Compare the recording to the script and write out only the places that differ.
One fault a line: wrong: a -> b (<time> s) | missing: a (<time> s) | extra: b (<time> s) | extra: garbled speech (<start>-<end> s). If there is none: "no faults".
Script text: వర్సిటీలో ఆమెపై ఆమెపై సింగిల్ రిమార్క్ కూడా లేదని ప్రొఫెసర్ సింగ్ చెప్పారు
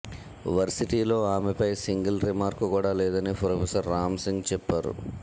missing: ఆమెపై (1.7 s)
extra: రామ్ (3.9 s)